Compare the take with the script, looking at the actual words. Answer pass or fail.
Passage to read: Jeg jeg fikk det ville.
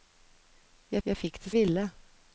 pass